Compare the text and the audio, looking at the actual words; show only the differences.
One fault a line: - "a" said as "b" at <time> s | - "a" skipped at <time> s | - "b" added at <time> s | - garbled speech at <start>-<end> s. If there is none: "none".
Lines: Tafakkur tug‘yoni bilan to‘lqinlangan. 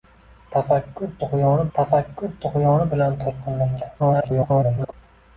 - "tafakkur tug‘yoni" added at 1.8 s
- garbled speech at 4.0-4.9 s